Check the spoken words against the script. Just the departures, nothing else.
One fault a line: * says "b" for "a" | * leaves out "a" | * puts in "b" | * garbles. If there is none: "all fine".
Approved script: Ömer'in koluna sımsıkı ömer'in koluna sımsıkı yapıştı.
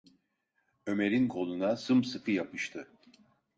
* leaves out "ömer'in koluna sımsıkı"